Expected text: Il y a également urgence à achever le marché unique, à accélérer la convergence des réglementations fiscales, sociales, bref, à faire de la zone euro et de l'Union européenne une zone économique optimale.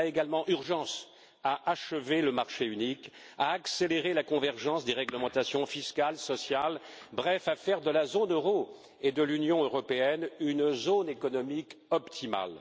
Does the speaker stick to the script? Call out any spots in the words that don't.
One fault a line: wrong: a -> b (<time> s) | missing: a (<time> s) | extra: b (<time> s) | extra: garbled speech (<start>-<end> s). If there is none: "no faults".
no faults